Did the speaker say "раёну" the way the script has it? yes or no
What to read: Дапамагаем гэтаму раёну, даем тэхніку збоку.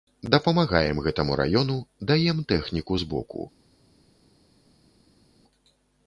yes